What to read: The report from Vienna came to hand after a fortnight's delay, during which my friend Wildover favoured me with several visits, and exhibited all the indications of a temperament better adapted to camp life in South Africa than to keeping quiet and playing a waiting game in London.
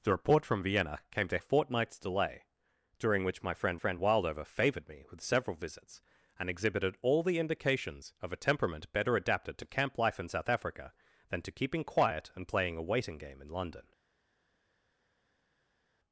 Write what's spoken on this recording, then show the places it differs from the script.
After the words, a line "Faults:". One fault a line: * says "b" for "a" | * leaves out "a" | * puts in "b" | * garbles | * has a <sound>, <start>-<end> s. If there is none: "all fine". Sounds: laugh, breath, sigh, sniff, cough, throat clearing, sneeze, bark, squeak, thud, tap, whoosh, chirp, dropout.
The report from Vienna came to a fortnight's delay, during which my friend friend Wildover favoured me with several visits, and exhibited all the indications of a temperament better adapted to camp life in South Africa than to keeping quiet and playing a waiting game in London.
Faults:
* leaves out "hand after"
* puts in "friend"